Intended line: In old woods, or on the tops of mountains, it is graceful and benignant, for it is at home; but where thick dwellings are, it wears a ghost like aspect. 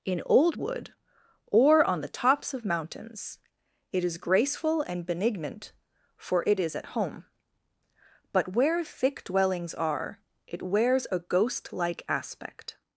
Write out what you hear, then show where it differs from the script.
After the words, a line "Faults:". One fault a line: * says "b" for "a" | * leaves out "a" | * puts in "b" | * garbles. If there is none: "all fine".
In old wood, or on the tops of mountains, it is graceful and benignant, for it is at home; but where thick dwellings are, it wears a ghost like aspect.
Faults:
* says "wood" for "woods"